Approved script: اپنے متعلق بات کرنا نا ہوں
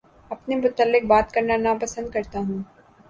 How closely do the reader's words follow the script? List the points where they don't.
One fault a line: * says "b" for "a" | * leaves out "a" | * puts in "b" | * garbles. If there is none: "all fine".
* puts in "پسند کرتا"